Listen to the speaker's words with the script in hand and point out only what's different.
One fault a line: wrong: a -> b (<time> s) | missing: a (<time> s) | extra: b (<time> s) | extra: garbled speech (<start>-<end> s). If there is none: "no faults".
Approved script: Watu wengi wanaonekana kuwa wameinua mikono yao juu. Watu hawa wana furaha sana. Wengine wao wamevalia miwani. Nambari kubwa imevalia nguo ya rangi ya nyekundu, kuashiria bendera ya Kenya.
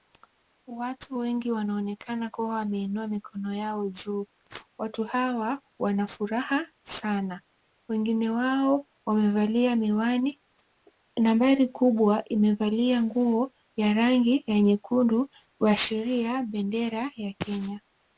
no faults